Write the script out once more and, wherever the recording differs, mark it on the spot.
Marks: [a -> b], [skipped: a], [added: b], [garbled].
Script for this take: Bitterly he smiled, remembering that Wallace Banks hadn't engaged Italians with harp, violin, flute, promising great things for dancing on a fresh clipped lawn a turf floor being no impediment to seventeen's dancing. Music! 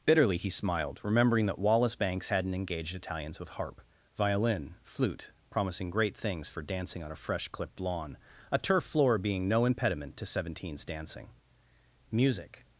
Bitterly he smiled, remembering that Wallace Banks hadn't engaged Italians with harp, violin, flute, promising great things for dancing on a fresh clipped lawn a turf floor being no impediment to seventeen's dancing. Music!